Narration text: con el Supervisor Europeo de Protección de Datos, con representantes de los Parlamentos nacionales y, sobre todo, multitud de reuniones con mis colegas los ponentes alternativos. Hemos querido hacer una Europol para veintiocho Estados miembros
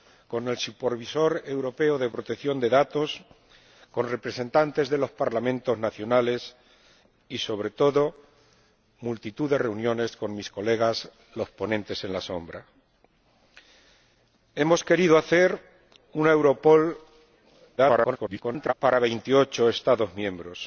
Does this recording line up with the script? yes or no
no